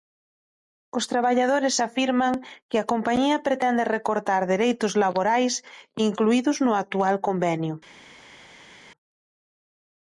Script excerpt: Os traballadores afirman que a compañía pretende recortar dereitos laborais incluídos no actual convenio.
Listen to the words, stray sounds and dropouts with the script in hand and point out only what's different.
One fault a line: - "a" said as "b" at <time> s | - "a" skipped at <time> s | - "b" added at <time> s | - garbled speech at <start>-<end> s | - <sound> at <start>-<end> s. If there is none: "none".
none